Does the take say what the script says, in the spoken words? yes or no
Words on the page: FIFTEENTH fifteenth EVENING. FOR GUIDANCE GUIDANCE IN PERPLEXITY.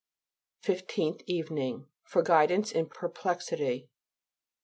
no